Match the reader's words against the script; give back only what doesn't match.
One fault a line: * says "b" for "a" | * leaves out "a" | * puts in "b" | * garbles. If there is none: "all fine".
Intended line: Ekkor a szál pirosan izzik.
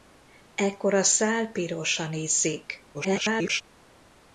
* garbles